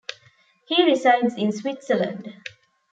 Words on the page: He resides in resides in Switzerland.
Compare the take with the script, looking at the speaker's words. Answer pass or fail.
fail